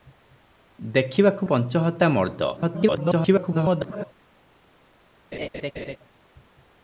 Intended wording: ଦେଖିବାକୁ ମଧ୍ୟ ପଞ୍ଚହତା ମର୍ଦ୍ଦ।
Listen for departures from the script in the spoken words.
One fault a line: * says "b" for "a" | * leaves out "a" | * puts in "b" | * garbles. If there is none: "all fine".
* leaves out "ମଧ୍ୟ"
* garbles